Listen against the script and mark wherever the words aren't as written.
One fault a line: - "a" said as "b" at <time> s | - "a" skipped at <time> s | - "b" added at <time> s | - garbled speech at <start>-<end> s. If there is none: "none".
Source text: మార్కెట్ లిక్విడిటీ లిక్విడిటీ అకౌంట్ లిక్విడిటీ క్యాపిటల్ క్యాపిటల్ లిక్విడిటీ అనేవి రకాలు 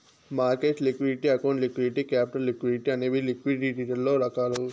- "లిక్విడిటీ" skipped at 1.3 s
- "క్యాపిటల్" skipped at 2.5 s
- "లిక్విడిటీలలో" added at 3.2 s